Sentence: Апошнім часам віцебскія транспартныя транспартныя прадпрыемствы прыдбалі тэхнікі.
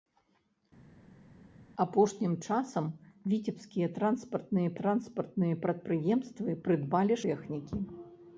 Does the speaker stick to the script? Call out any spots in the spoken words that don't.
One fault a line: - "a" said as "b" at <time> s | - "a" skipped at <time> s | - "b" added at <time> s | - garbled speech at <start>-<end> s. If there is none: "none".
none